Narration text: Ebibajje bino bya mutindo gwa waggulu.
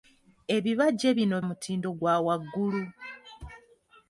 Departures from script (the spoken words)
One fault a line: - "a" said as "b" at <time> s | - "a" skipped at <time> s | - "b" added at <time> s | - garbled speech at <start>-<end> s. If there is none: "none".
- "bya" skipped at 1.4 s